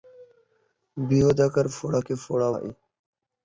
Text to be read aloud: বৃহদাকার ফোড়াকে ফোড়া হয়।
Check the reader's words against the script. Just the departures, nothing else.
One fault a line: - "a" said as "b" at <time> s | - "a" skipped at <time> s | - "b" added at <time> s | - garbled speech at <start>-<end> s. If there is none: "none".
none